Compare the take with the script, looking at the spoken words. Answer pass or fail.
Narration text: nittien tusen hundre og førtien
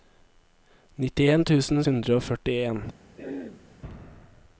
pass